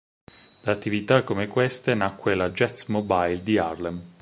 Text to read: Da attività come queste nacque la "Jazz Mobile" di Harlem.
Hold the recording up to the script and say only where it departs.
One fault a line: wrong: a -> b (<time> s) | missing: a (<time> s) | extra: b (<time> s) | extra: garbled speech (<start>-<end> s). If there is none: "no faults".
no faults